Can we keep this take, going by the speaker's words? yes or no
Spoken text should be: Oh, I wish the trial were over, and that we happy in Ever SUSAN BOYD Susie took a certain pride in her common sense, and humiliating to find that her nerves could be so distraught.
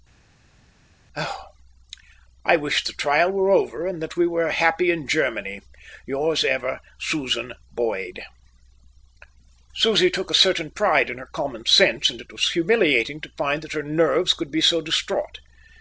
no